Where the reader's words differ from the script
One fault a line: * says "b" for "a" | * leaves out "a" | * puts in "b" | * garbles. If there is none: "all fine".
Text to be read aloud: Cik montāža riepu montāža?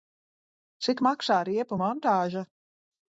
* says "maksā" for "montāža"